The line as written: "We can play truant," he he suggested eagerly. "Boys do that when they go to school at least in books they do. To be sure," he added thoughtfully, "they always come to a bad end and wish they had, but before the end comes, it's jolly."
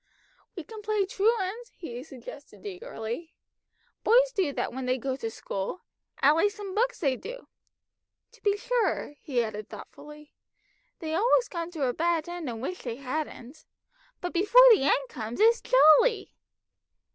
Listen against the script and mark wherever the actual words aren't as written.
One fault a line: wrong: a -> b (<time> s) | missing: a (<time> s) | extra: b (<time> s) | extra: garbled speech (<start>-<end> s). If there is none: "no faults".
missing: he (2.0 s)
wrong: had -> hadn't (12.9 s)